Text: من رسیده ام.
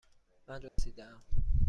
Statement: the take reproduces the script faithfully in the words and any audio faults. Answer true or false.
false